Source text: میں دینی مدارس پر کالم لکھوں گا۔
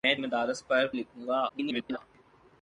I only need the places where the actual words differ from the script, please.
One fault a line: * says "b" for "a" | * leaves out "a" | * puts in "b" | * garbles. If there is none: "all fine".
* leaves out "دینی"
* leaves out "کالم"
* garbles